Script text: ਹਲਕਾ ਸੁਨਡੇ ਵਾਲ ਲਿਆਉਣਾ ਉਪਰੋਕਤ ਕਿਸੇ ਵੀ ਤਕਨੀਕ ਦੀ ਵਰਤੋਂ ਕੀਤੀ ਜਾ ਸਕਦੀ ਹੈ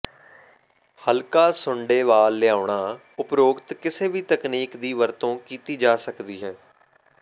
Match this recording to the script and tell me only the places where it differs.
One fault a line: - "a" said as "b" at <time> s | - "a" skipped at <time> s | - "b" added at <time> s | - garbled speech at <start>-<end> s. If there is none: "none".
none